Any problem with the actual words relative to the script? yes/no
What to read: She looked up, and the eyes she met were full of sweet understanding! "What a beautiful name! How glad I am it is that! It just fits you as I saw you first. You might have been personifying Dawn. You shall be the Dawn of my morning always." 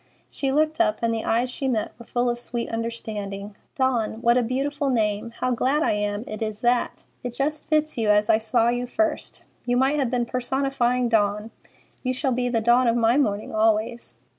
yes